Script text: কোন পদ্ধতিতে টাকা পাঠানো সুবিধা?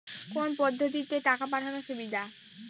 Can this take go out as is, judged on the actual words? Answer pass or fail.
pass